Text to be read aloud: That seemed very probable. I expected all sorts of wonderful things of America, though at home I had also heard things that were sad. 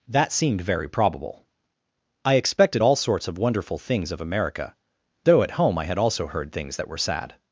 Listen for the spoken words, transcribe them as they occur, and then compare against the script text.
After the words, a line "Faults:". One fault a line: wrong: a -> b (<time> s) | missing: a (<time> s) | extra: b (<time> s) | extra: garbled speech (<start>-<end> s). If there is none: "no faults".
That seemed very probable. I expected all sorts of wonderful things of America, though at home I had also heard things that were sad.
Faults:
no faults